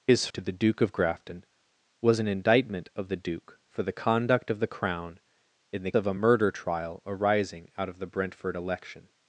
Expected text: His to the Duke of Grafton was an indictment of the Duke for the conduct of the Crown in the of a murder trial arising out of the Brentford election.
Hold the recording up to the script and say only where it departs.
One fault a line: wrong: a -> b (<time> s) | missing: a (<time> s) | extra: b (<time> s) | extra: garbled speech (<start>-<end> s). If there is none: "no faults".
no faults